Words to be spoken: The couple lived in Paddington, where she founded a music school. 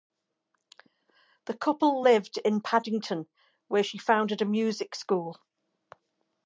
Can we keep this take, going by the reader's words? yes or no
yes